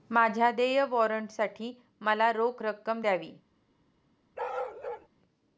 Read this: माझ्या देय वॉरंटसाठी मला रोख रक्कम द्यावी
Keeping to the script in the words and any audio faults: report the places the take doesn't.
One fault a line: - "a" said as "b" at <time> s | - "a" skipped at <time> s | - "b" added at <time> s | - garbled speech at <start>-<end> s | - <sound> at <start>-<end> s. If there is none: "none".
- bark at 4.4-5.1 s